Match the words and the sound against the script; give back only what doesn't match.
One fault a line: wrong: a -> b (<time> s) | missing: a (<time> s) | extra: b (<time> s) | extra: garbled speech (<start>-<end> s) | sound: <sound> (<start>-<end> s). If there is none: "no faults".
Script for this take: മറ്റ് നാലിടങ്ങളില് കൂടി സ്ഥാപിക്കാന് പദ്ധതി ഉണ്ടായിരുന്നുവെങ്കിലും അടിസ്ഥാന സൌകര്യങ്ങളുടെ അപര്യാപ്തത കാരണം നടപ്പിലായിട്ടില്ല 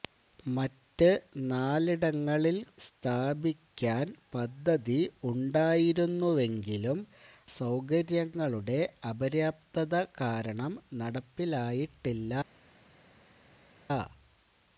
missing: കൂടി (2.5 s)
missing: അടിസ്ഥാന (7.0 s)